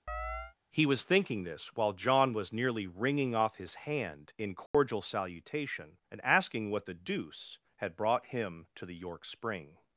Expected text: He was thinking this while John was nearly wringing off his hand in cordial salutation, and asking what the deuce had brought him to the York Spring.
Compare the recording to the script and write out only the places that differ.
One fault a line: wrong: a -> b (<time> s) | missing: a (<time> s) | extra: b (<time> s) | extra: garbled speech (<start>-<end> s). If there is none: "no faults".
no faults